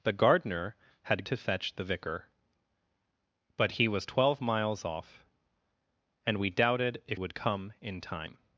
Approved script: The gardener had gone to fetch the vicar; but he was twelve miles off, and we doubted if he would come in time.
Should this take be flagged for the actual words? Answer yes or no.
yes